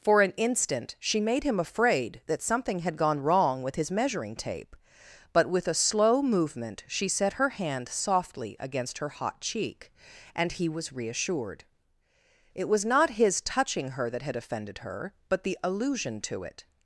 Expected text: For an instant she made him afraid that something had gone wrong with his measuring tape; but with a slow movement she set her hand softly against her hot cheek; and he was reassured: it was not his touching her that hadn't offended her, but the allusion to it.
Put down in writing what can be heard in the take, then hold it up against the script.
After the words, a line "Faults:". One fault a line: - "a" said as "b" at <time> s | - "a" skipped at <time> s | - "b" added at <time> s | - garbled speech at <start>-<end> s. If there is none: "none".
For an instant she made him afraid that something had gone wrong with his measuring tape; but with a slow movement she set her hand softly against her hot cheek; and he was reassured: it was not his touching her that had offended her, but the allusion to it.
Faults:
- "hadn't" said as "had" at 14.2 s